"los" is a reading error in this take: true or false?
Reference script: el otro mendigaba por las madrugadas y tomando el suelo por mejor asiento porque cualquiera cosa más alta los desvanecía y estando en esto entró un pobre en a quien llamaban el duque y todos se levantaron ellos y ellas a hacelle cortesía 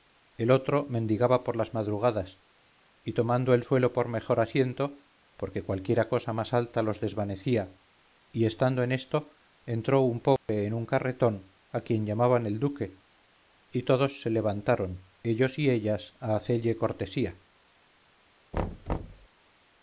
false